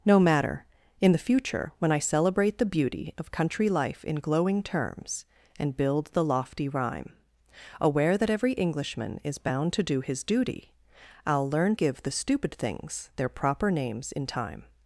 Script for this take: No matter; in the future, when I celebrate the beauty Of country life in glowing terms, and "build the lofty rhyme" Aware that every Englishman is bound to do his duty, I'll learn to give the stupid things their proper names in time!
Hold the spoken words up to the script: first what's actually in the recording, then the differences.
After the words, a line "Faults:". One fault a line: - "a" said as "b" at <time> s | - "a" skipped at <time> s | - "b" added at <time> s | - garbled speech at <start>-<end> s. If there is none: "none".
No matter; in the future, when I celebrate the beauty Of country life in glowing terms, and "build the lofty rhyme" Aware that every Englishman is bound to do his duty, I'll learn give the stupid things their proper names in time!
Faults:
- "to" skipped at 11.8 s